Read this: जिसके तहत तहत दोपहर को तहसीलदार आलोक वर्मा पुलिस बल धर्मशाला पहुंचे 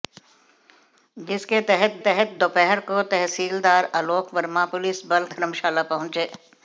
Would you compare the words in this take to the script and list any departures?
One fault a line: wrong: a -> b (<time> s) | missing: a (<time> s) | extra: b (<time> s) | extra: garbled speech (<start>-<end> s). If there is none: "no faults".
no faults